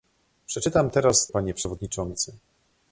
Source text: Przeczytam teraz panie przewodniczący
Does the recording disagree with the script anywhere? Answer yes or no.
no